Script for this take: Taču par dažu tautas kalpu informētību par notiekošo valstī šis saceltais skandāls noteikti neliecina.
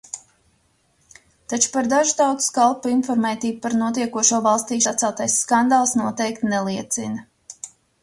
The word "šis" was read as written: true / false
false